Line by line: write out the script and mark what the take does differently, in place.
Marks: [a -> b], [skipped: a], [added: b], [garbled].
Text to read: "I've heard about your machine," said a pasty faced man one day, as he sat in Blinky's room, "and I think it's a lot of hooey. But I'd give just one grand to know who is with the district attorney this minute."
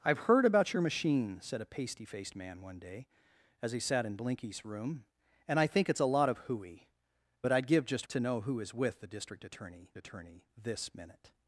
"I've heard about your machine," said a pasty faced man one day, as he sat in Blinky's room, "and I think it's a lot of hooey. But I'd give just [skipped: one grand] to know who is with the district attorney [added: attorney] this minute."